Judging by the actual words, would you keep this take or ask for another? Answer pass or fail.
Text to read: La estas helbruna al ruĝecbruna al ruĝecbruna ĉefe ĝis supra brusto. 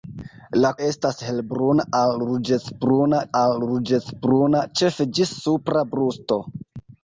pass